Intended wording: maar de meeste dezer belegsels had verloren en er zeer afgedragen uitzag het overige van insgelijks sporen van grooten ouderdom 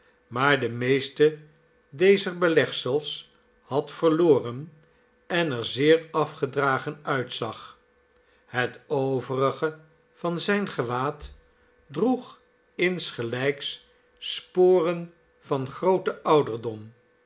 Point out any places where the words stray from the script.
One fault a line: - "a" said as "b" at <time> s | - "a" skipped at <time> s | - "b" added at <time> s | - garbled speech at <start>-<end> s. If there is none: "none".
- "zijn gewaad droeg" added at 10.4 s